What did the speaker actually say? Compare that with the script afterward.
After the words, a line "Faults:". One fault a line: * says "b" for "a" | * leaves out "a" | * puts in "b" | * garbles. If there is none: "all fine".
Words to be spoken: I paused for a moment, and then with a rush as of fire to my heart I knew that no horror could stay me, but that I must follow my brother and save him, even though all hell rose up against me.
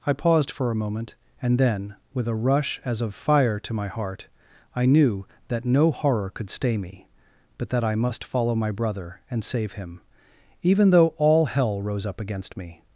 I paused for a moment, and then with a rush as of fire to my heart I knew that no horror could stay me, but that I must follow my brother and save him, even though all hell rose up against me.
Faults:
all fine